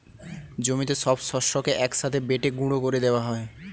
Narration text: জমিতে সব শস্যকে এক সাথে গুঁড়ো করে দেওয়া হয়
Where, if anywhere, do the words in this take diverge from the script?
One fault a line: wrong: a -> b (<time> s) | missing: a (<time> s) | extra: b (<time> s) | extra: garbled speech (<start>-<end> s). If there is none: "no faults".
extra: বেটে (2.3 s)